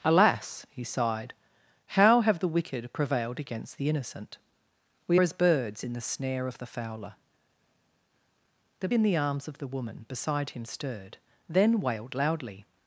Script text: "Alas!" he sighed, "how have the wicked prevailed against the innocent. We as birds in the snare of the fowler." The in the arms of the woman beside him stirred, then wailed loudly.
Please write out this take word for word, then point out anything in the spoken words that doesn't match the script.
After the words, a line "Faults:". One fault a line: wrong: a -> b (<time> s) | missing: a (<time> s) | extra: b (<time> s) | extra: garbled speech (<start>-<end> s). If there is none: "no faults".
"Alas!" he sighed, "how have the wicked prevailed against the innocent. We as birds in the snare of the fowler." The in the arms of the woman beside him stirred, then wailed loudly.
Faults:
no faults